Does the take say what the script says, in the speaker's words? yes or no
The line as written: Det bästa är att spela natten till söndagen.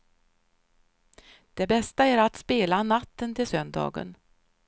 yes